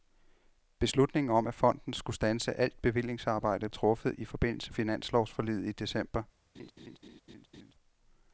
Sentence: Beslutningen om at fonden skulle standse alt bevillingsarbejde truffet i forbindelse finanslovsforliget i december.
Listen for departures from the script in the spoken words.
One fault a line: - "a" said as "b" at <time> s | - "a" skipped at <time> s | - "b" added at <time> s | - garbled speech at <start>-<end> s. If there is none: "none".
none